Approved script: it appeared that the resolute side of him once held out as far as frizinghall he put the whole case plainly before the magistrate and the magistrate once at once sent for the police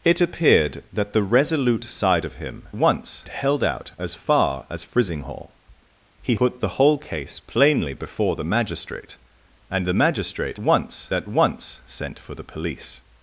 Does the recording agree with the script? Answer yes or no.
yes